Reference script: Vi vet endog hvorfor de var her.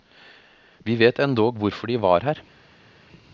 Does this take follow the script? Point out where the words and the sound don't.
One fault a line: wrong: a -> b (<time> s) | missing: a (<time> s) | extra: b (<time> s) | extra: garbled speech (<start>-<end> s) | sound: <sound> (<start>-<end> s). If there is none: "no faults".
no faults